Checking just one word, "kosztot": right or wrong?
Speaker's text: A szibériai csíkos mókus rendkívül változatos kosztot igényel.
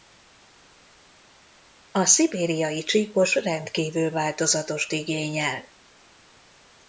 wrong